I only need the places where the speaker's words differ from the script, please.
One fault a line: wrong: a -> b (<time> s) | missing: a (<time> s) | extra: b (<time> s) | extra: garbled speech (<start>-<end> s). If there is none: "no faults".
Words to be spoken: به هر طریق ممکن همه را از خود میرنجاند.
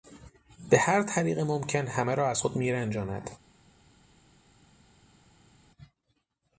no faults